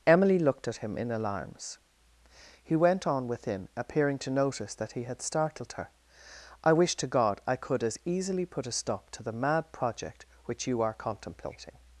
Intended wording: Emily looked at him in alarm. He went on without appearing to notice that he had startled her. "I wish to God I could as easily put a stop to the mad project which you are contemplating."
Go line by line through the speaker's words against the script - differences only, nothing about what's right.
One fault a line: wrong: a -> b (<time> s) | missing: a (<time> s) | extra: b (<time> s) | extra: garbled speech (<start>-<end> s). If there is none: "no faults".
wrong: alarm -> alarms (1.1 s)
wrong: without -> within (3.3 s)